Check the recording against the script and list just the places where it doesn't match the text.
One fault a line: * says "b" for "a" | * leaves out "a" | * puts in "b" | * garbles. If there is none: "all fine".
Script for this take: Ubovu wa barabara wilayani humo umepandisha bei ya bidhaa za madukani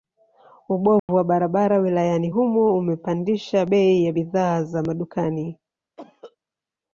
all fine